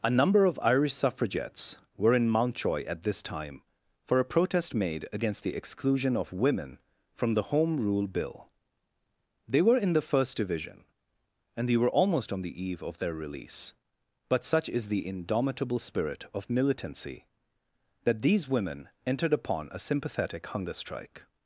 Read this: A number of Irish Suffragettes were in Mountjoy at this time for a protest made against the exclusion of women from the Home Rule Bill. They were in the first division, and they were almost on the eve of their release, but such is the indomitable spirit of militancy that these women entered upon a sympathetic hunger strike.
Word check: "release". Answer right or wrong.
right